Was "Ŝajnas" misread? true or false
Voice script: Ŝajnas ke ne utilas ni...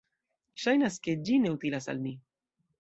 false